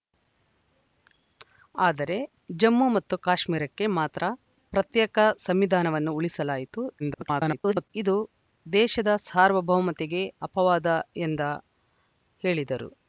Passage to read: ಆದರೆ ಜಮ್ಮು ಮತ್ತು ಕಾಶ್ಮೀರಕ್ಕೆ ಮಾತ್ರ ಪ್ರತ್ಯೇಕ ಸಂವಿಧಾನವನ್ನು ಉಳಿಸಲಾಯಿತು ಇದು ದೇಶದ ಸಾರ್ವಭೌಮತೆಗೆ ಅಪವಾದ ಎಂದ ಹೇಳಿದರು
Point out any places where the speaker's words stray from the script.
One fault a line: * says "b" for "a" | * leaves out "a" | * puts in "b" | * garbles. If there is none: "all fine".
* garbles